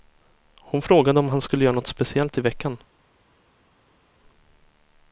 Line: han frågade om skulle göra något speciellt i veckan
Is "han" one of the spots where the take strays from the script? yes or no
yes